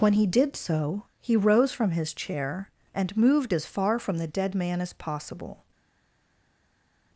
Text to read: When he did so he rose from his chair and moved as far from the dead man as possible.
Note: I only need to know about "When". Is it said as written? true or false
true